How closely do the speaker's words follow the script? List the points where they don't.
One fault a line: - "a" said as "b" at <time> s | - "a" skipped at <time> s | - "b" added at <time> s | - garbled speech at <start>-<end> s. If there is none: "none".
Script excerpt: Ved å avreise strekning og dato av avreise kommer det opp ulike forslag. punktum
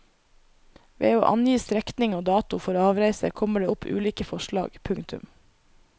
- "avreise" said as "angi" at 1.3 s
- "av" said as "for" at 2.6 s